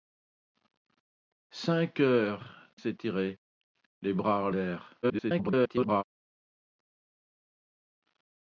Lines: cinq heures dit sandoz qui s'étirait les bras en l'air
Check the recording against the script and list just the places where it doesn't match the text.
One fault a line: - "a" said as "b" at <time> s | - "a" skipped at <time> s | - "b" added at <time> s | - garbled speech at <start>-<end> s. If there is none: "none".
- "dit sandoz qui" skipped at 2.7 s
- garbled speech at 5.0-6.0 s